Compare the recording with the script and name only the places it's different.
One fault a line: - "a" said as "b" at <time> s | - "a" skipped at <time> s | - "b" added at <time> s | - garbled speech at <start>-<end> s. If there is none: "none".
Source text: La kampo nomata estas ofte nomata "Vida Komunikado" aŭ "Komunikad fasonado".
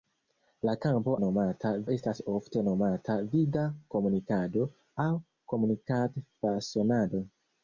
none